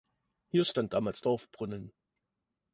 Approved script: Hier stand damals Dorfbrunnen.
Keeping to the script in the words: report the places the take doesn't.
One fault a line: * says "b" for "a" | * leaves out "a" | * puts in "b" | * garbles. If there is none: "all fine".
all fine